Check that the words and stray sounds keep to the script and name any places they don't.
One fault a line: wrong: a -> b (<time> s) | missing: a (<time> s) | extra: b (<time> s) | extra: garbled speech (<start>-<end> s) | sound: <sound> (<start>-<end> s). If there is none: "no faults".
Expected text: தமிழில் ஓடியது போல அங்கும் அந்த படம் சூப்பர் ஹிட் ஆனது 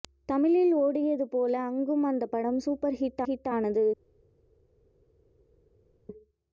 extra: ஹிட் (3.2 s)